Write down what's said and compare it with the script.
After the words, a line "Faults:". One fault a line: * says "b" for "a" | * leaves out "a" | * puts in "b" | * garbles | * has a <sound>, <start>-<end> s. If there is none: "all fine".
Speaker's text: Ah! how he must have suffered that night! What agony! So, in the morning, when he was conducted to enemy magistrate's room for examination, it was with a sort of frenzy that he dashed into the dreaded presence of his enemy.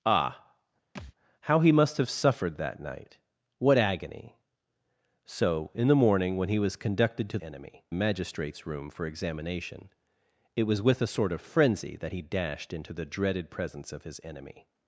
Ah! how he must have suffered that night! What agony! So, in the morning, when he was conducted to enemy magistrate's room for examination, it was with a sort of frenzy that he dashed into the dreaded presence of his enemy.
Faults:
* has a thud, 0.9-1.1 s